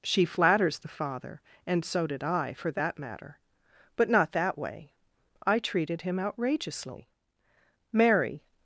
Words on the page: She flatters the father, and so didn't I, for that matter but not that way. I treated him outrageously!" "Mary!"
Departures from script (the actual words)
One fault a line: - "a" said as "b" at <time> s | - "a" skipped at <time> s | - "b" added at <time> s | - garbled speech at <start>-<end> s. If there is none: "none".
- "didn't" said as "did" at 2.1 s